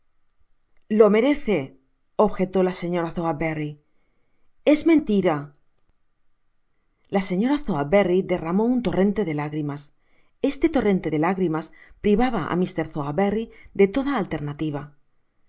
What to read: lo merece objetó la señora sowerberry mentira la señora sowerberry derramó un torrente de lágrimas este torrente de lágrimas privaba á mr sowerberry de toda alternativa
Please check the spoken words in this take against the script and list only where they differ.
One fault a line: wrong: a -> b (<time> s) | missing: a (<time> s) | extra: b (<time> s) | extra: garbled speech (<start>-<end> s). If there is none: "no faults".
extra: es (4.6 s)